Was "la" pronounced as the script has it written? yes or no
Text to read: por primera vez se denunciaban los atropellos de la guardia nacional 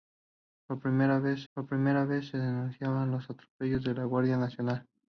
yes